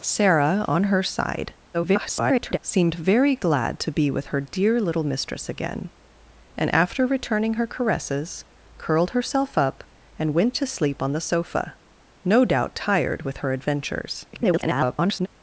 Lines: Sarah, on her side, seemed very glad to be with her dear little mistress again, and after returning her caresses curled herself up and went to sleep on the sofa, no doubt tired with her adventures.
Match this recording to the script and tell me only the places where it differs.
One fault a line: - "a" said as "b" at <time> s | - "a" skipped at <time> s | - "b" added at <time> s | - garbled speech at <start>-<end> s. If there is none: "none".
- garbled speech at 1.7-2.6 s
- garbled speech at 14.3-15.3 s